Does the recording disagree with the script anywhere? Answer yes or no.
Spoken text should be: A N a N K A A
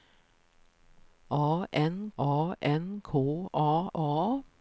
no